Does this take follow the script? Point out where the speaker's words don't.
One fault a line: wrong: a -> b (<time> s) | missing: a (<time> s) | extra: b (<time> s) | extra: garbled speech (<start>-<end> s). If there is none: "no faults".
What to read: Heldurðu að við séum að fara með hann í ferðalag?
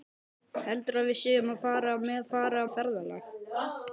wrong: hann -> fara (2.3 s)